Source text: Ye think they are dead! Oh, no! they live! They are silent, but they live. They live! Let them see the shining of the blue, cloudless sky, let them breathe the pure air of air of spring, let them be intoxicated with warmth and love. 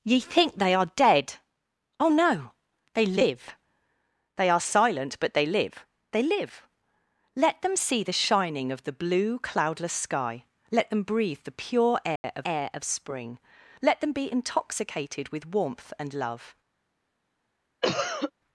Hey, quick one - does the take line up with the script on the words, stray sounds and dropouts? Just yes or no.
no